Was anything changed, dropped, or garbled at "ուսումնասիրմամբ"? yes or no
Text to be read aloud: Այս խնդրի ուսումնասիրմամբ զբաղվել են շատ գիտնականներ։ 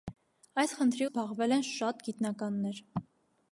yes